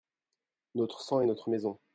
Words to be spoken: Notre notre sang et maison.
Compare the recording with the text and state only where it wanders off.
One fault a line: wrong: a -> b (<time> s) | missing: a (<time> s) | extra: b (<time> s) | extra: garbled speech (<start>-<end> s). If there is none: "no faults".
missing: notre (1.0 s)
extra: notre (1.2 s)